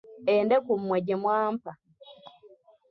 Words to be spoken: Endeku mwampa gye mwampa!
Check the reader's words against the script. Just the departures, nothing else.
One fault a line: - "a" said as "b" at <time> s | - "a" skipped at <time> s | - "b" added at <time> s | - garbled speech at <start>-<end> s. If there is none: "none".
- "mwampa" said as "mmwe" at 0.8 s